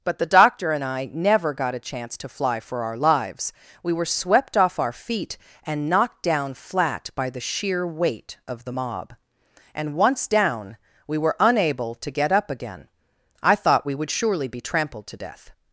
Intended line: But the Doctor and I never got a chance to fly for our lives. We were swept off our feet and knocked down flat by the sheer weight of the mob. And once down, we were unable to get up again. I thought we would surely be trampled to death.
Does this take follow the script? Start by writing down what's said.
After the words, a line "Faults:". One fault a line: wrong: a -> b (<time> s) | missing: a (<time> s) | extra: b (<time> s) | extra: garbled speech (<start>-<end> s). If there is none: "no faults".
But the Doctor and I never got a chance to fly for our lives. We were swept off our feet and knocked down flat by the sheer weight of the mob. And once down, we were unable to get up again. I thought we would surely be trampled to death.
Faults:
no faults